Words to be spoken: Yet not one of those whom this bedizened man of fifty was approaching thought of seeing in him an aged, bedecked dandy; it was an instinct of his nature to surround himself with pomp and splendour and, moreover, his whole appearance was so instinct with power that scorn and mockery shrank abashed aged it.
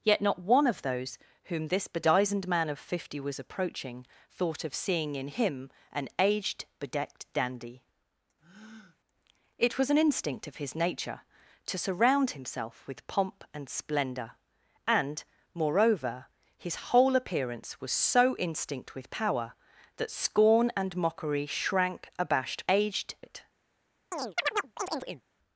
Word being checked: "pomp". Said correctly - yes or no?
yes